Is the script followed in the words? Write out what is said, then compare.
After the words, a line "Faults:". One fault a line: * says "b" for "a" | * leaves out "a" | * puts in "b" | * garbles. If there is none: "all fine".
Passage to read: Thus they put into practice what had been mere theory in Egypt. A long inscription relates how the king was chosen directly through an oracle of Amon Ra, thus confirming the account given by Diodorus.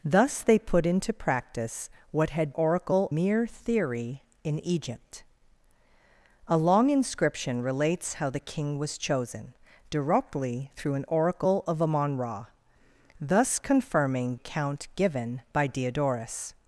Thus they put into practice what had oracle mere theory in Egypt. A long inscription relates how the king was chosen directly through an oracle of Amon Ra, thus confirming account given by Diodorus.
Faults:
* says "oracle" for "been"
* leaves out "the"